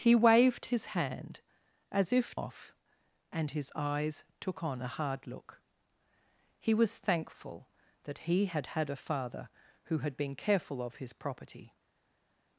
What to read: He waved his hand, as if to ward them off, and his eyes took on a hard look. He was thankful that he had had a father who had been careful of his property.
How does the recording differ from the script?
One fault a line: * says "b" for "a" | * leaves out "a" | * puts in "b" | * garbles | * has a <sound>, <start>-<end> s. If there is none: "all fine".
* leaves out "to ward them"